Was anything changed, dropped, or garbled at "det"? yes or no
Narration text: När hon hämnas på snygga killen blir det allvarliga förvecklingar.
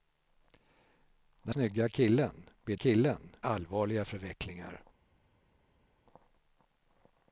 yes